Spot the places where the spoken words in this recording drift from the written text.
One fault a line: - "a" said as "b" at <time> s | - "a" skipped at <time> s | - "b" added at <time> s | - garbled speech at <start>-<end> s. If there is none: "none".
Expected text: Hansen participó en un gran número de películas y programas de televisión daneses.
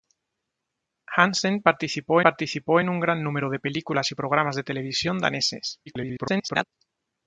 - "participó" added at 2.2 s
- garbled speech at 5.9-6.6 s